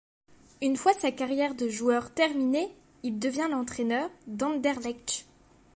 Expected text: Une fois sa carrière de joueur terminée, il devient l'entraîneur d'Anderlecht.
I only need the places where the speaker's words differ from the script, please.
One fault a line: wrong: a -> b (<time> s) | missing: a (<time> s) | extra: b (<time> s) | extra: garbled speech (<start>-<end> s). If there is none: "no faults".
no faults